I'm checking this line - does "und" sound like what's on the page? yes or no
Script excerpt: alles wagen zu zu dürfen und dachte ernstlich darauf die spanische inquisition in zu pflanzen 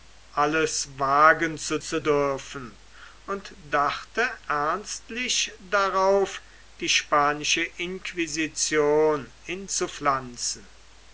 yes